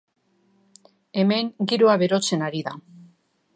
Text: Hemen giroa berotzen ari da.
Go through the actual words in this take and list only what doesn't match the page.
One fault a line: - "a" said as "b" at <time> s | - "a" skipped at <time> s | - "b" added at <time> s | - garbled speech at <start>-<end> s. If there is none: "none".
none